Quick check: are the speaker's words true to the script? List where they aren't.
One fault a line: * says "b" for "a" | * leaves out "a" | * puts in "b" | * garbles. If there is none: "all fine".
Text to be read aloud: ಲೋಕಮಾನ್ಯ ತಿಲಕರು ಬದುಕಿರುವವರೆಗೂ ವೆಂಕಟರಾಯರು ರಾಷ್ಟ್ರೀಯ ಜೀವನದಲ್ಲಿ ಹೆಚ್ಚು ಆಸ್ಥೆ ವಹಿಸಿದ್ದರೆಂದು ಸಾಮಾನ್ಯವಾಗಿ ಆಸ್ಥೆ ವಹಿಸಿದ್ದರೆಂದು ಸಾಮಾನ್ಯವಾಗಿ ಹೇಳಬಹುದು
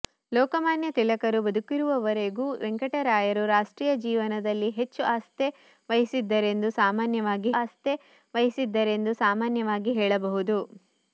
all fine